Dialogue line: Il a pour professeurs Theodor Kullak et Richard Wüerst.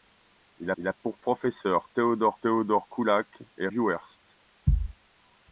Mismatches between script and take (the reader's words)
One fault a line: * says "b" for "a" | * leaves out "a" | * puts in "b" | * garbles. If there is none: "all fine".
* puts in "il"
* puts in "Theodor"
* leaves out "Richard"